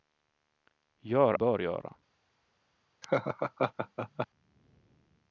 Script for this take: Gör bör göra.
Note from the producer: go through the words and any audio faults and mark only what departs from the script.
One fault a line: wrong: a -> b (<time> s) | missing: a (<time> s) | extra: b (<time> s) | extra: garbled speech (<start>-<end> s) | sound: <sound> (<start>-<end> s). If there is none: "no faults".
sound: laugh (3.0-4.3 s)